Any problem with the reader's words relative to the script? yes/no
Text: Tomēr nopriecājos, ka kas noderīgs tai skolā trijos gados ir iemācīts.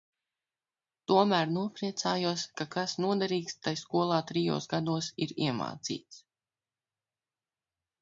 no